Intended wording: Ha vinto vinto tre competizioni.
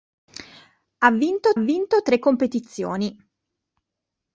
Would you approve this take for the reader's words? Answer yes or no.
yes